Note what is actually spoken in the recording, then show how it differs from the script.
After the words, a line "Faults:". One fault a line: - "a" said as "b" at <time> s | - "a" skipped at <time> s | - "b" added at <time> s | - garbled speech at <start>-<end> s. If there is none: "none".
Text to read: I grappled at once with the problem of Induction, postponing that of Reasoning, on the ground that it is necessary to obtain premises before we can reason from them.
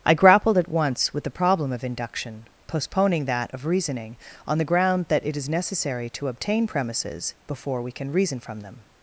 I grappled at once with the problem of Induction, postponing that of Reasoning, on the ground that it is necessary to obtain premises before we can reason from them.
Faults:
none